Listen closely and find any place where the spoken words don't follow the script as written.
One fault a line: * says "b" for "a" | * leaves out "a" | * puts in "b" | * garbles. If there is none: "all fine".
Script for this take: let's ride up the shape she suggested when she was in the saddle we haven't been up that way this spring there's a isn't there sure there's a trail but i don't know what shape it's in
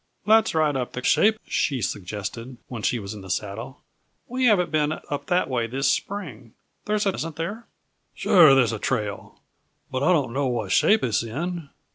all fine